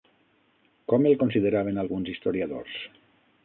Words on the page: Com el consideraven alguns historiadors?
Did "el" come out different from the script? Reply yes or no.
no